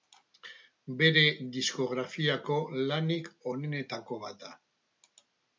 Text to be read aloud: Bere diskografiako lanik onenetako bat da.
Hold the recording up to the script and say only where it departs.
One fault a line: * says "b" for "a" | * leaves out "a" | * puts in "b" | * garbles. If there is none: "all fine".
all fine